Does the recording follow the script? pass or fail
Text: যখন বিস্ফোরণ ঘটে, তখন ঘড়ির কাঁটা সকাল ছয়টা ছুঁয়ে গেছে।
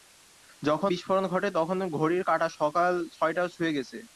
pass